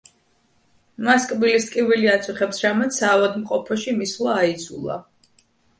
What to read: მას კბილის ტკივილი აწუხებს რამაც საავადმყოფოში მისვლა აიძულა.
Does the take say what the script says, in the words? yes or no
yes